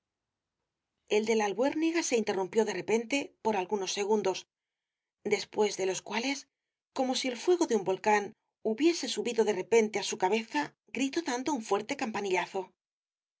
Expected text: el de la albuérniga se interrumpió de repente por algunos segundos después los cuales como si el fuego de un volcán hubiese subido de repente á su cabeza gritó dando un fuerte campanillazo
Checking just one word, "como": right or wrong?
right